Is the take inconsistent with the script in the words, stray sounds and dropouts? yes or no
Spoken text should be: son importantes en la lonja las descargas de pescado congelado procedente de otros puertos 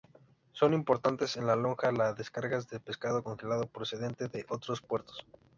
no